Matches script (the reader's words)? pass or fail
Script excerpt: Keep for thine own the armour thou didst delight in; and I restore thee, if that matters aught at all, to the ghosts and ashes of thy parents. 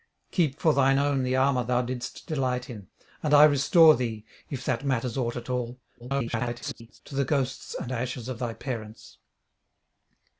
fail